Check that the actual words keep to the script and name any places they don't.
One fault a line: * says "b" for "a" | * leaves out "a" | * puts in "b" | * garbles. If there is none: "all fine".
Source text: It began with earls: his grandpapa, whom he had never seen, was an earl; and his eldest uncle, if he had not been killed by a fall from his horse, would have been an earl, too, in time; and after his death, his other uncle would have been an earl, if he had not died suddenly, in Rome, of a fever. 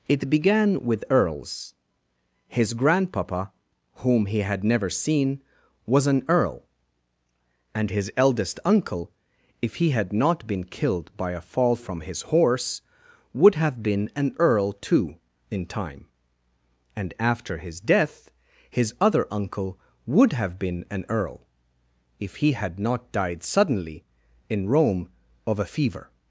all fine